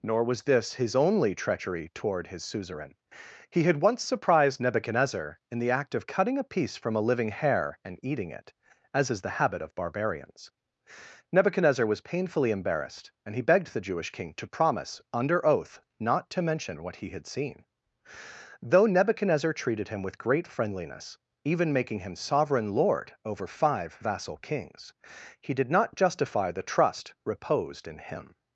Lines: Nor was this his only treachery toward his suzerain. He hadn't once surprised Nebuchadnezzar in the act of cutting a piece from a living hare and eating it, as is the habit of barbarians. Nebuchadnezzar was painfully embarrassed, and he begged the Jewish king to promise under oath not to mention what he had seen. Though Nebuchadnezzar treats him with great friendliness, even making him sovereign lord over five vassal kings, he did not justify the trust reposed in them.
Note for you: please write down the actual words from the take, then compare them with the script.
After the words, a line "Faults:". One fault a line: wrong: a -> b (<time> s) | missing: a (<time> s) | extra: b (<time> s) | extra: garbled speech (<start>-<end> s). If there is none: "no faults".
Nor was this his only treachery toward his suzerain. He had once surprised Nebuchadnezzar in the act of cutting a piece from a living hare and eating it, as is the habit of barbarians. Nebuchadnezzar was painfully embarrassed, and he begged the Jewish king to promise under oath not to mention what he had seen. Though Nebuchadnezzar treated him with great friendliness, even making him sovereign lord over five vassal kings, he did not justify the trust reposed in him.
Faults:
wrong: hadn't -> had (3.6 s)
wrong: treats -> treated (19.5 s)
wrong: them -> him (28.0 s)